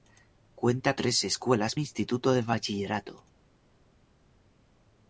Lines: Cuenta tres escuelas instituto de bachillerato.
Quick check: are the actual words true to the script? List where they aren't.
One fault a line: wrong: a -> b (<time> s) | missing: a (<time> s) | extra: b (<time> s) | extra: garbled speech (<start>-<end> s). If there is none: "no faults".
no faults